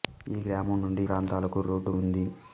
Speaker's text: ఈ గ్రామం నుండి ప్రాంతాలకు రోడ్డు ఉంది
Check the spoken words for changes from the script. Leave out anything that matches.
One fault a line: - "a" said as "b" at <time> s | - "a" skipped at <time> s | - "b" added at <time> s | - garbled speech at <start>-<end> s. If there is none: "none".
none